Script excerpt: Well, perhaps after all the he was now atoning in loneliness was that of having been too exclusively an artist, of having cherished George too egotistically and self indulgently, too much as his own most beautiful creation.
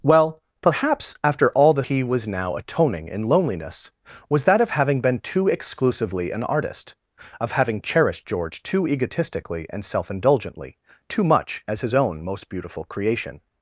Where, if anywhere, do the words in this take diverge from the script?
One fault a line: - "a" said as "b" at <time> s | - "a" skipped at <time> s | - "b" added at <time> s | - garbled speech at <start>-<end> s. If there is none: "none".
none